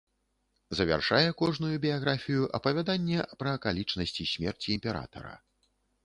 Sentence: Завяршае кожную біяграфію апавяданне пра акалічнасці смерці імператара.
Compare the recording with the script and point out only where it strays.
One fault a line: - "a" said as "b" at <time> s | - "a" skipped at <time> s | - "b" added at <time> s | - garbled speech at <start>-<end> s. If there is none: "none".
none